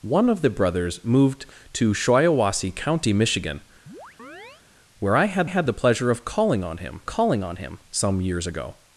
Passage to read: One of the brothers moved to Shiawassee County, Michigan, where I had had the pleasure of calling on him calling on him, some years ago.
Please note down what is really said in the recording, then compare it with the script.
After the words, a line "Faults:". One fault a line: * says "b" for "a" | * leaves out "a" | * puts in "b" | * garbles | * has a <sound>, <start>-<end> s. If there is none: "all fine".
One of the brothers moved to Shiawassee County, Michigan, where I had had the pleasure of calling on him calling on him, some years ago.
Faults:
* has a chirp, 3.9-4.6 s